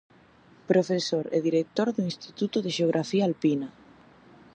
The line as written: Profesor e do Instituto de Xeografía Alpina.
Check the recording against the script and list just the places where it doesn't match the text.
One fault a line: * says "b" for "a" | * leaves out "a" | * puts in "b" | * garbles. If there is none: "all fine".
* puts in "director"